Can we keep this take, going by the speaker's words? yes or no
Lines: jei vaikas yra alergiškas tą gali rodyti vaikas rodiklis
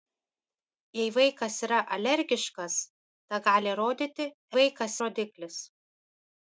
yes